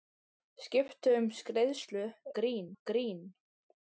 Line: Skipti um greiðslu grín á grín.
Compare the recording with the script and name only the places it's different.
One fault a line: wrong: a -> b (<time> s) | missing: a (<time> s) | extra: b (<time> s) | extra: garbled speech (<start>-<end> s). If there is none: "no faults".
no faults